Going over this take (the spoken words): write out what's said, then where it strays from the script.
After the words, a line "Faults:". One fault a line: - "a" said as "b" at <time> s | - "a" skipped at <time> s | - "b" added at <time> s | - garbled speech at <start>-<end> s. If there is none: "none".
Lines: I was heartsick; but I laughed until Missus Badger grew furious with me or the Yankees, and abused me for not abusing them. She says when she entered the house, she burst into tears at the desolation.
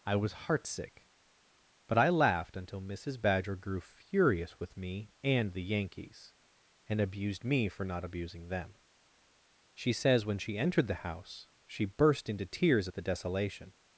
I was heartsick; but I laughed until Missus Badger grew furious with me and the Yankees, and abused me for not abusing them. She says when she entered the house, she burst into tears at the desolation.
Faults:
- "or" said as "and" at 5.2 s